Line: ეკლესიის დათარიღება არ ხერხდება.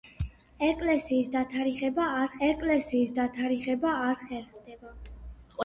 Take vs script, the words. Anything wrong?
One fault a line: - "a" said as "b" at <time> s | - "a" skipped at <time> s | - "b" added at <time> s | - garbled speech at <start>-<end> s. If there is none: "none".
- "ეკლესიის დათარიღება არ" added at 2.5 s